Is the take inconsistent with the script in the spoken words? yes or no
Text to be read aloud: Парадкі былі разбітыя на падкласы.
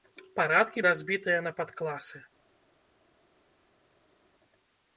yes